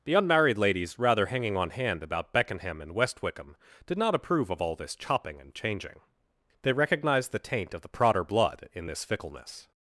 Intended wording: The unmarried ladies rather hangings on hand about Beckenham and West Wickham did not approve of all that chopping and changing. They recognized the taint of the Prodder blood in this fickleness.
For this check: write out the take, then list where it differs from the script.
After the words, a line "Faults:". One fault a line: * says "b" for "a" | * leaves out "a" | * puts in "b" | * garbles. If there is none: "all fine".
The unmarried ladies rather hanging on hand about Beckenham and West Wickham did not approve of all this chopping and changing. They recognized the taint of the Prodder blood in this fickleness.
Faults:
* says "hanging" for "hangings"
* says "this" for "that"